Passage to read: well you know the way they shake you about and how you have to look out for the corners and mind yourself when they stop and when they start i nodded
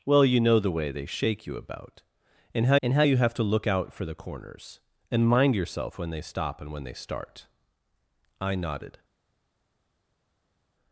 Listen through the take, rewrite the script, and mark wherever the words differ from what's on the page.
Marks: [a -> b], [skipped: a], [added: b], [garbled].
well you know the way they shake you about and how [added: and how] you have to look out for the corners and mind yourself when they stop and when they start i nodded